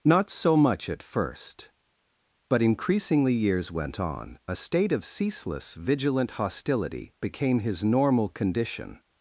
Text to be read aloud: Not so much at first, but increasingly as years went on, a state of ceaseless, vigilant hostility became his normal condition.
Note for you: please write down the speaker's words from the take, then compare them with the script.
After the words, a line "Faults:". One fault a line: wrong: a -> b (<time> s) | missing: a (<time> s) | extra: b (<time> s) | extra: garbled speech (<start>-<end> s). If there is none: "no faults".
Not so much at first, but increasingly years went on, a state of ceaseless, vigilant hostility became his normal condition.
Faults:
missing: as (3.3 s)